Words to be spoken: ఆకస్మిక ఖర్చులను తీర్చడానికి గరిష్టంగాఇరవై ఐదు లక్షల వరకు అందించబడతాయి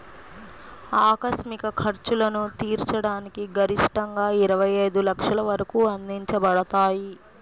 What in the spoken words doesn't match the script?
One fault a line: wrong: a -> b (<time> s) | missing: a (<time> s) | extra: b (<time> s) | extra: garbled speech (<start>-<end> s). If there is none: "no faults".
no faults